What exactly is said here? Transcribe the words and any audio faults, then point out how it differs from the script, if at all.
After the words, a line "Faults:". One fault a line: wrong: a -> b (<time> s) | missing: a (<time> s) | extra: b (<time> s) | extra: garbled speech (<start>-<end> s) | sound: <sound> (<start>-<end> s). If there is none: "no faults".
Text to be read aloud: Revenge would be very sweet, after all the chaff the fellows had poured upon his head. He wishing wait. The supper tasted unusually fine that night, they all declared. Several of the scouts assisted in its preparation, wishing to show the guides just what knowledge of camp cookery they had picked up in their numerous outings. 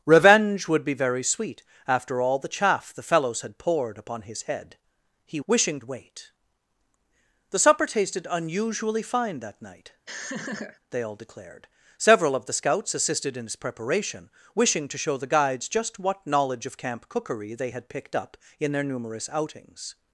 Revenge would be very sweet, after all the chaff the fellows had poured upon his head. He wishing wait. The supper tasted unusually fine that night, they all declared. Several of the scouts assisted in its preparation, wishing to show the guides just what knowledge of camp cookery they had picked up in their numerous outings.
Faults:
sound: laugh (10.1-10.8 s)